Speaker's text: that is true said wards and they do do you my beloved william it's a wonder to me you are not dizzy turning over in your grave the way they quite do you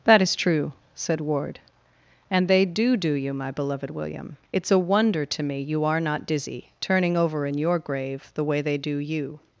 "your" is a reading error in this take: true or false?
false